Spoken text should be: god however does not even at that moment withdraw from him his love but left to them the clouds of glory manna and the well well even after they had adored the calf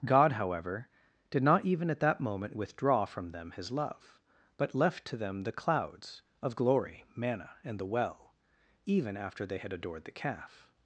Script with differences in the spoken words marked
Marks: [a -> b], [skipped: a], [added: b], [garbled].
god however [does -> did] not even at that moment withdraw from [him -> them] his love but left to them the clouds of glory manna and the well [skipped: well] even after they had adored the calf